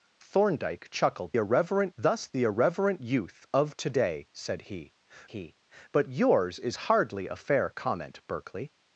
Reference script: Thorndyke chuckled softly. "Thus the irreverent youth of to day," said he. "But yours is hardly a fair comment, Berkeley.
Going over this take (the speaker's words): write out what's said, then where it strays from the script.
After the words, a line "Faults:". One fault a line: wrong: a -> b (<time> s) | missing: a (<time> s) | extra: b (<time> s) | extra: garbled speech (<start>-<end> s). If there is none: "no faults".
Thorndyke chuckled irreverent. "Thus the irreverent youth of to day," said he he. "But yours is hardly a fair comment, Berkeley.
Faults:
wrong: softly -> irreverent (1.4 s)
extra: he (5.3 s)